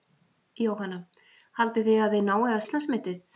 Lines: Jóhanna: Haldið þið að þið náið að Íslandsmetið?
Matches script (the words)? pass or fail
pass